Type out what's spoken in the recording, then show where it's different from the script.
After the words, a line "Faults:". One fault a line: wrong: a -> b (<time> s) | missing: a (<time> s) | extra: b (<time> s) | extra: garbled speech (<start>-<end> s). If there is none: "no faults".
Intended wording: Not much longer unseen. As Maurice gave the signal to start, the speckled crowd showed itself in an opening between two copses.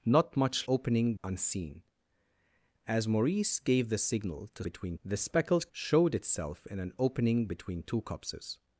Not much opening unseen. As Maurice gave the signal to between, the speckled showed itself in an opening between two copses.
Faults:
wrong: longer -> opening (0.7 s)
wrong: start -> between (4.6 s)
missing: crowd (5.7 s)